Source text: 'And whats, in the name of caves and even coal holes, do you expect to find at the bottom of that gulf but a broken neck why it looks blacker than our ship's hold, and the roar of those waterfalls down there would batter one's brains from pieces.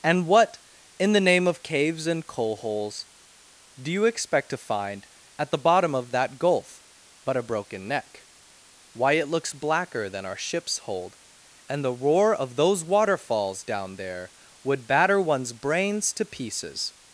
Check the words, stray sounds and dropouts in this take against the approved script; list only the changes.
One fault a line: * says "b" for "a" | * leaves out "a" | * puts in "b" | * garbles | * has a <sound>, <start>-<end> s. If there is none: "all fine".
* says "what" for "whats"
* leaves out "even"
* says "to" for "from"